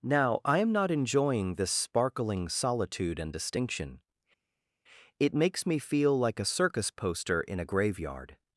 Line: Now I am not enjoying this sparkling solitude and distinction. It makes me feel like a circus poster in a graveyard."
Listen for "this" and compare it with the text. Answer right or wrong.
right